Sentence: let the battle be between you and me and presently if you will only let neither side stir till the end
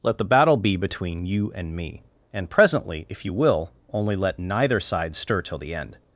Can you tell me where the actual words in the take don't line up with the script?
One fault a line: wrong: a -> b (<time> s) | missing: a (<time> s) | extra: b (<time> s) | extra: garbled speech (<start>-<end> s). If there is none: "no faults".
no faults